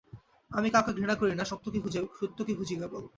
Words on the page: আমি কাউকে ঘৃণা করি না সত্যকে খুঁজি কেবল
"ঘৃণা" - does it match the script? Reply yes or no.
yes